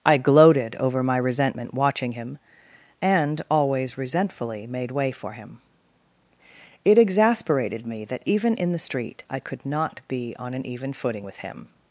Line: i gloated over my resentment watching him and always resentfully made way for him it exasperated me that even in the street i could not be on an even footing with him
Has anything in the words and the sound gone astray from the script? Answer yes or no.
no